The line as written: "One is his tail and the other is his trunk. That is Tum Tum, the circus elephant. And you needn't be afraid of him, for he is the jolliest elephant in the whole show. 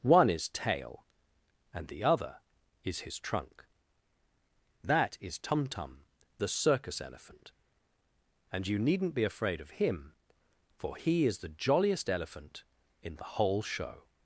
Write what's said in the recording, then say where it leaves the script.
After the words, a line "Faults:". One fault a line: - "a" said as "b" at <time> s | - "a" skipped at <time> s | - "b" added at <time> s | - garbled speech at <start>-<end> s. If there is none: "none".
"One is tail and the other is his trunk. That is Tum Tum, the circus elephant. And you needn't be afraid of him, for he is the jolliest elephant in the whole show.
Faults:
- "his" skipped at 0.5 s